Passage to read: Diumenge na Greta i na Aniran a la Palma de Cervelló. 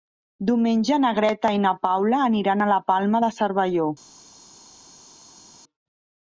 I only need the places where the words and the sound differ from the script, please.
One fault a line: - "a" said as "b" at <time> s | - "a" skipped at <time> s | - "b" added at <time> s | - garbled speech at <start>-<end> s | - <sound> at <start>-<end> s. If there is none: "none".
- "Paula" added at 1.8 s